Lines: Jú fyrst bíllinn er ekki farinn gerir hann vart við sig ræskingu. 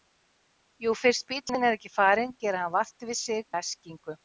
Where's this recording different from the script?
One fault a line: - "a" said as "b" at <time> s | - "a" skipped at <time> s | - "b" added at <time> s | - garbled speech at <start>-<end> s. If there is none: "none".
none